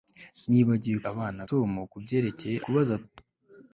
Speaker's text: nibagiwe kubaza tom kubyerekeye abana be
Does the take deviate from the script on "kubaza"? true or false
true